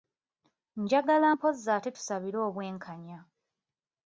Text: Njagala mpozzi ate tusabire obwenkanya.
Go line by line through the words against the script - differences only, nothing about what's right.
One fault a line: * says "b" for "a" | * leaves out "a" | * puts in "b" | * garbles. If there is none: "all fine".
all fine